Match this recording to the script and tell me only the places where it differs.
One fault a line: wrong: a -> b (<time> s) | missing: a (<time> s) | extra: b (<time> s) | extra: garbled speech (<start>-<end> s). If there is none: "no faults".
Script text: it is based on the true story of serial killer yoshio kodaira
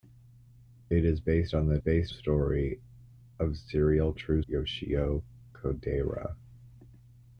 wrong: true -> based (1.8 s)
wrong: killer -> true (4.1 s)